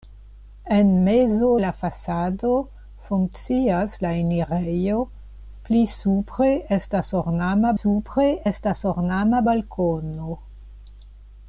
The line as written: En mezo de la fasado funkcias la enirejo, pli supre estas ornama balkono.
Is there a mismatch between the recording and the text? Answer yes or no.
yes